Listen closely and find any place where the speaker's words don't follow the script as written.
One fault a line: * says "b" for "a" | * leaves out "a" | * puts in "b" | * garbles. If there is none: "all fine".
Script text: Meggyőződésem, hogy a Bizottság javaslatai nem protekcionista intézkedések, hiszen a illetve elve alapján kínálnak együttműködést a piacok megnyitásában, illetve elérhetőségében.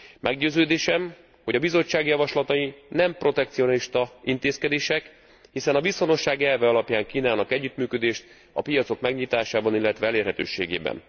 * says "viszonosság" for "illetve"